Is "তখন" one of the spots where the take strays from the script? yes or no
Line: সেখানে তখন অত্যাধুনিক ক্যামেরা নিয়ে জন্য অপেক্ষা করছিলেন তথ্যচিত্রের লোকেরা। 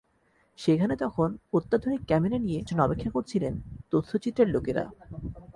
no